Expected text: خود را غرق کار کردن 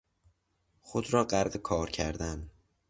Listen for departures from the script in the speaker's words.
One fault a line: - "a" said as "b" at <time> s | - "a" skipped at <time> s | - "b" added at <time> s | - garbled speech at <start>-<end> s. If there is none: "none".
none